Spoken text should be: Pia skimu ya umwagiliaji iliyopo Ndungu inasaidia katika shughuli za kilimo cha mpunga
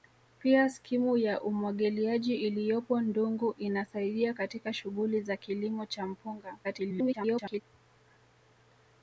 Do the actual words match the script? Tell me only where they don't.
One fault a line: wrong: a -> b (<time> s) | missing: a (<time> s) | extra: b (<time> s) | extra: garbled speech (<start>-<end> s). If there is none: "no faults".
extra: garbled speech (6.6-7.6 s)